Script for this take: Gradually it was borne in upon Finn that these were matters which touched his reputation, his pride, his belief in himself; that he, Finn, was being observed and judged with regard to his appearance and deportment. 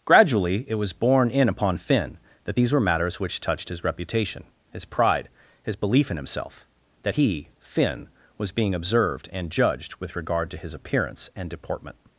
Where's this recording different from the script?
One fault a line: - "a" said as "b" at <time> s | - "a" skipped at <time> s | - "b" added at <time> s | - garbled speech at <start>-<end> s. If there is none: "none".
none